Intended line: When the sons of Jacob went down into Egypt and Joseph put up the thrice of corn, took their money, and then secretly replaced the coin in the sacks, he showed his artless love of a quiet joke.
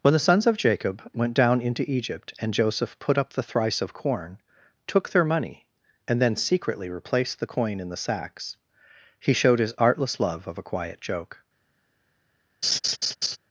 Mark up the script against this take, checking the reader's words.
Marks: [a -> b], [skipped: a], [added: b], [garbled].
When the sons of Jacob went down into Egypt and Joseph put up the thrice of corn, took their money, and then secretly replaced the coin in the sacks, he showed his artless love of a quiet joke.